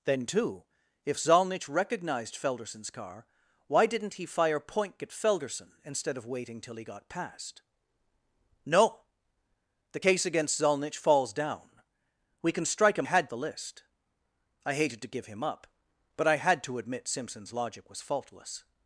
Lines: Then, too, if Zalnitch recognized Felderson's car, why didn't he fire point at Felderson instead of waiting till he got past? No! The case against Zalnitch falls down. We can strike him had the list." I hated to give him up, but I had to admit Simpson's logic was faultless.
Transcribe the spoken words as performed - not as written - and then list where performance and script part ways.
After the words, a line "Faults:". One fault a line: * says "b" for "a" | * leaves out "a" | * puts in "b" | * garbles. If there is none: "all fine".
Then, too, if Zalnitch recognized Felderson's car, why didn't he fire point at Felderson instead of waiting till he got past? No! The case against Zalnitch falls down. We can strike him had the list." I hated to give him up, but I had to admit Simpson's logic was faultless.
Faults:
all fine